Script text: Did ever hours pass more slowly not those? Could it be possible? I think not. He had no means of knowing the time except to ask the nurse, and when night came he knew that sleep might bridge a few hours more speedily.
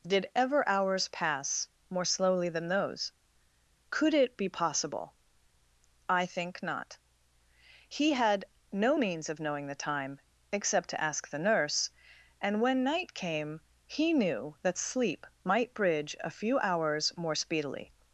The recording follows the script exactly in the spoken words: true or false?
false